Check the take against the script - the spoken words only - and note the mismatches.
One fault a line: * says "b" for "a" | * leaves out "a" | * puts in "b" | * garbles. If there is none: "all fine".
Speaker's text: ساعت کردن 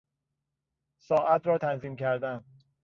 * puts in "را تنظیم"